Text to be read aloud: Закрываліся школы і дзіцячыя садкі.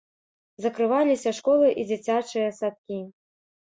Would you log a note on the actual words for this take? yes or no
no